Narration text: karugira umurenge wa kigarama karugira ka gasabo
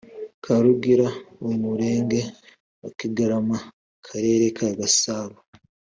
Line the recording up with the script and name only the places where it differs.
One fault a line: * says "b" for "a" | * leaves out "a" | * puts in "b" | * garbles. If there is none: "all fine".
* says "akarere" for "karugira"